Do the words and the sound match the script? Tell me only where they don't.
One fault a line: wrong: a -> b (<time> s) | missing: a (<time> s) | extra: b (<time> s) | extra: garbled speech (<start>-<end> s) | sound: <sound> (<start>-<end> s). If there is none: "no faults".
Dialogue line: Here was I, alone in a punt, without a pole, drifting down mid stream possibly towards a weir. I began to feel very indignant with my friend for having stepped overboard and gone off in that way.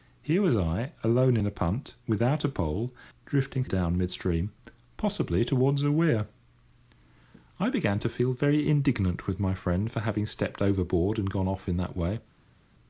no faults